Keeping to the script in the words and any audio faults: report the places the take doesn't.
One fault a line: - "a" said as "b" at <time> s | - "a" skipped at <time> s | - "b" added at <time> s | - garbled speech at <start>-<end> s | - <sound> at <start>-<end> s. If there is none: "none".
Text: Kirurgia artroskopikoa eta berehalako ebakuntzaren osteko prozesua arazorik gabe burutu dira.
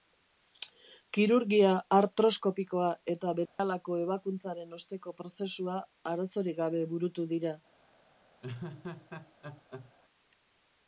- dropout at 3.5-3.6 s
- laugh at 8.4-9.9 s